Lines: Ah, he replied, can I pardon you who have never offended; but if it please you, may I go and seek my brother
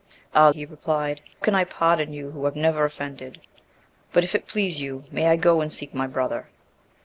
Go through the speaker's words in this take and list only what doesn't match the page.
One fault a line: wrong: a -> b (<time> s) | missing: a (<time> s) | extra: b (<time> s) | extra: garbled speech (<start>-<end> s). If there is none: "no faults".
no faults